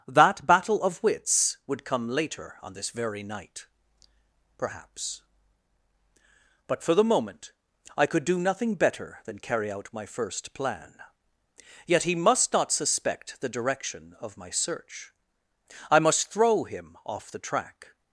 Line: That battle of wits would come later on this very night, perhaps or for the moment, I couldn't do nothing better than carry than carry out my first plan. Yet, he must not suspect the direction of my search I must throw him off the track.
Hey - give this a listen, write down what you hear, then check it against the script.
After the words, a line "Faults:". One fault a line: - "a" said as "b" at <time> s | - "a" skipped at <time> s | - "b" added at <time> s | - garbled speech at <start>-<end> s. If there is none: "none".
That battle of wits would come later on this very night, perhaps but for the moment, I could do nothing better than carry out my first plan. Yet, he must not suspect the direction of my search I must throw him off the track.
Faults:
- "or" said as "but" at 6.7 s
- "couldn't" said as "could" at 8.1 s
- "than carry" skipped at 9.7 s